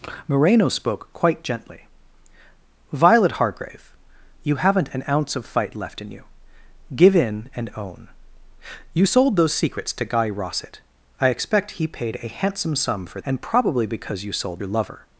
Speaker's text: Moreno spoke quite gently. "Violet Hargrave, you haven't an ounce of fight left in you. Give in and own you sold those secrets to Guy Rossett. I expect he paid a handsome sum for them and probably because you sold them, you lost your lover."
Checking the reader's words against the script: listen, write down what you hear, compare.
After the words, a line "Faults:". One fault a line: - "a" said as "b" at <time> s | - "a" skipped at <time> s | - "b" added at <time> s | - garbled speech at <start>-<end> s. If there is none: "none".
Moreno spoke quite gently. "Violet Hargrave, you haven't an ounce of fight left in you. Give in and own you sold those secrets to Guy Rossett. I expect he paid a handsome sum for and probably because you sold your lover."
Faults:
- "them" skipped at 13.2 s
- "them you lost" skipped at 14.6 s